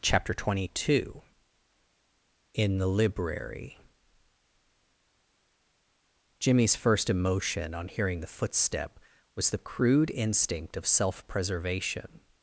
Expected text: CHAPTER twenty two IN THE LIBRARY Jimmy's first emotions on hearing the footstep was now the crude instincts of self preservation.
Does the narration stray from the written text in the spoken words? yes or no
yes